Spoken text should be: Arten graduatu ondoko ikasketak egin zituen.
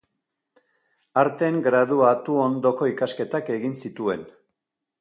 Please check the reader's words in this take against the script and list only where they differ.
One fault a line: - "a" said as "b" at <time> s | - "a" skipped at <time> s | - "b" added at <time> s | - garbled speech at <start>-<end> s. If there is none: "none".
none